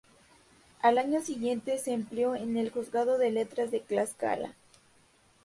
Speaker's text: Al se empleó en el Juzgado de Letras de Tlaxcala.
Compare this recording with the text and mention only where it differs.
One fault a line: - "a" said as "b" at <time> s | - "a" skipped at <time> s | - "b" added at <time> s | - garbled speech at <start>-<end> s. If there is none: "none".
- "año siguiente" added at 1.0 s